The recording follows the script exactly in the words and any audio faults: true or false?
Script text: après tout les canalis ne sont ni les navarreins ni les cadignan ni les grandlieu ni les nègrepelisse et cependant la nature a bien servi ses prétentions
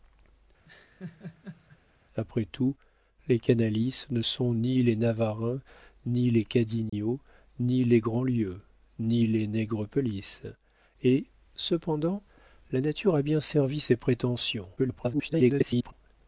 false